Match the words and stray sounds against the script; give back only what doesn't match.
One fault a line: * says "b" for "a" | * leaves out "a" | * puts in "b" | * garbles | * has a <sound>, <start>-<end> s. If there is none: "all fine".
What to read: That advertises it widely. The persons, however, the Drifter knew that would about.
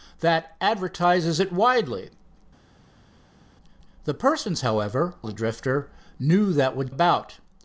all fine